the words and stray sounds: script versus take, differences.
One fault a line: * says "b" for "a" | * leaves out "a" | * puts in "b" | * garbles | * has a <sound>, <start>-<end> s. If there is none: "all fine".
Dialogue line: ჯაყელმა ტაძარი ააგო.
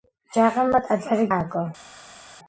all fine